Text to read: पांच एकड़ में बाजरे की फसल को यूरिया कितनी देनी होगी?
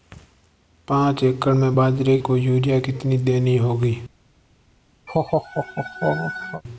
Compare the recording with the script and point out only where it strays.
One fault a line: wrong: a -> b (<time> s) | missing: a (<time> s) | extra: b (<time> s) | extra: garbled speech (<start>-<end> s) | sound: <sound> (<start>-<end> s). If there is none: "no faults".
missing: की फसल (2.2 s)
sound: laugh (5.1-6.6 s)